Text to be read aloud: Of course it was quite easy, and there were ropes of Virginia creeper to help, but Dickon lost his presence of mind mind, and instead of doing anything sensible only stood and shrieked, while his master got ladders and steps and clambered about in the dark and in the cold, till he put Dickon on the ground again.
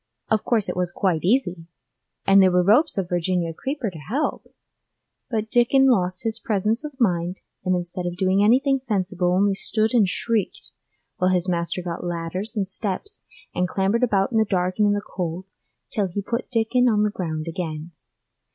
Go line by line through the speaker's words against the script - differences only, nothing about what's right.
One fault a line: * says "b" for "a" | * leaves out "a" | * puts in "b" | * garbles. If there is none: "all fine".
* leaves out "mind"